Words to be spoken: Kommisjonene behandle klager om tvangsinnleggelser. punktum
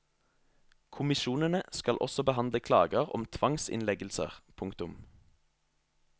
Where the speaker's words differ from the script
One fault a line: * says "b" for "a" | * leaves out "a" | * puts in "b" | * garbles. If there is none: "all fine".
* puts in "skal også"